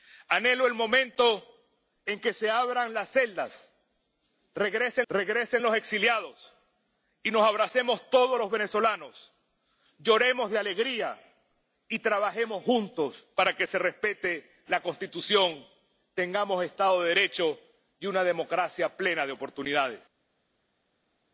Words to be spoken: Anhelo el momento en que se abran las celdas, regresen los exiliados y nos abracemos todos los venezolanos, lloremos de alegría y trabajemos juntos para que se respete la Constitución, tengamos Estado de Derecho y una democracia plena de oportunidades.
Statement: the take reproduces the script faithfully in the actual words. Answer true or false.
false